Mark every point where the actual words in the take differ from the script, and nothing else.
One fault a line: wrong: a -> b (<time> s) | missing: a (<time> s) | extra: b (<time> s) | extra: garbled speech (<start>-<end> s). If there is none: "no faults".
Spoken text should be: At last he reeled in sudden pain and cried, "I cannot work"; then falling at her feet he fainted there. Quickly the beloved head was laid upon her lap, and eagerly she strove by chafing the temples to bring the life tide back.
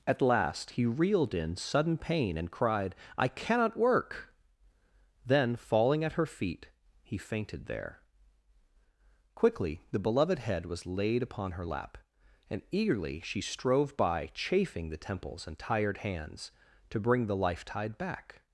extra: and tired hands (15.5 s)